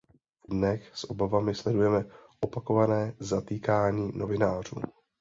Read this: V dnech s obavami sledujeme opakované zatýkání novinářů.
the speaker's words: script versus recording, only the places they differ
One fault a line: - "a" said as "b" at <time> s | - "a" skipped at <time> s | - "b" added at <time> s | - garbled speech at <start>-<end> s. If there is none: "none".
none